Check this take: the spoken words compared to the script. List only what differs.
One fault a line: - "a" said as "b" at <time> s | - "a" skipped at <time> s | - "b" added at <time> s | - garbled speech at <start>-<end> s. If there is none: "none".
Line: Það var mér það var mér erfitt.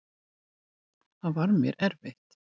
- "það var mér" skipped at 1.8 s